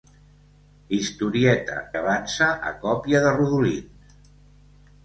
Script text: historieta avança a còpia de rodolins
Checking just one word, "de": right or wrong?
right